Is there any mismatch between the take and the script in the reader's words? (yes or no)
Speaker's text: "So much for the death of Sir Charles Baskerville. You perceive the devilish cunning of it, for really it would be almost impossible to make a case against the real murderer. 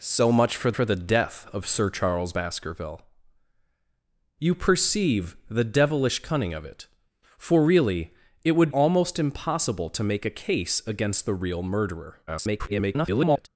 yes